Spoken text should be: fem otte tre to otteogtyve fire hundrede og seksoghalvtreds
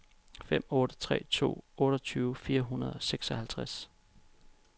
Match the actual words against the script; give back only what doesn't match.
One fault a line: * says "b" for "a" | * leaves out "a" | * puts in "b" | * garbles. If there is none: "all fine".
all fine